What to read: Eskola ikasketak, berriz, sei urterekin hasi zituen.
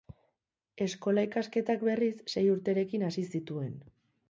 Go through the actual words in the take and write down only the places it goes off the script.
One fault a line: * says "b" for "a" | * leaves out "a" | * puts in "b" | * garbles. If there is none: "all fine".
all fine